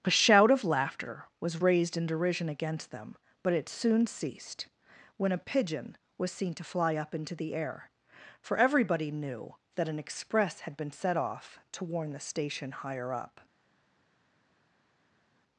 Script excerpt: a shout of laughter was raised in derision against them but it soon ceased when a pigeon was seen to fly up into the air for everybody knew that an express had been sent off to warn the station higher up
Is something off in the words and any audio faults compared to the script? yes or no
yes